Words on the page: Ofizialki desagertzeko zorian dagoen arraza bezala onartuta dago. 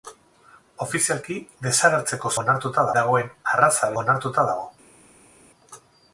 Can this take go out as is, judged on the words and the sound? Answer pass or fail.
fail